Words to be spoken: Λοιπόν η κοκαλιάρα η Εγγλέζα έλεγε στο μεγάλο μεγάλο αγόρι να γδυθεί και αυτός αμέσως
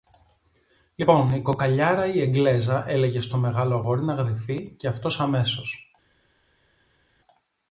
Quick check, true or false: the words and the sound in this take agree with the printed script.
false